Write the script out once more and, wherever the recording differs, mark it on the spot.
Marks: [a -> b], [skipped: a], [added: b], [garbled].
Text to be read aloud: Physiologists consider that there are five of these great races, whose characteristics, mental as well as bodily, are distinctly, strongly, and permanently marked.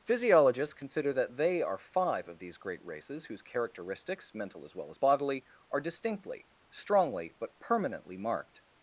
Physiologists consider that [there -> they] are five of these great races, whose characteristics, mental as well as bodily, are distinctly, strongly, [and -> but] permanently marked.